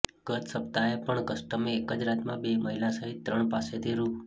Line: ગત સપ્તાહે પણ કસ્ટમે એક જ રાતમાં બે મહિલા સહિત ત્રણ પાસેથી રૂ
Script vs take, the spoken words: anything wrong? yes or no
no